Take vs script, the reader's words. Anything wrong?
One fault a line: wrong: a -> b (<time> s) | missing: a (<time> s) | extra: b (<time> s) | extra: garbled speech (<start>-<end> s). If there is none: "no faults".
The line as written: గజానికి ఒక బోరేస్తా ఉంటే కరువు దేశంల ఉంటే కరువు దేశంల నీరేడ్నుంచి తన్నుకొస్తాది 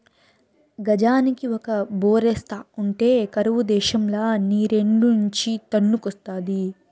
missing: ఉంటే కరువు దేశంల (4.2 s)